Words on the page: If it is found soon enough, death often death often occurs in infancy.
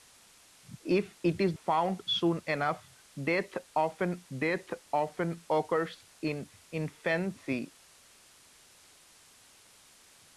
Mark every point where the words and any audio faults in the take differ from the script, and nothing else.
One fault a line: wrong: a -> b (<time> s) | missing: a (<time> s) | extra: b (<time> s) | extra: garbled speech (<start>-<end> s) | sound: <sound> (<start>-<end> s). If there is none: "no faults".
no faults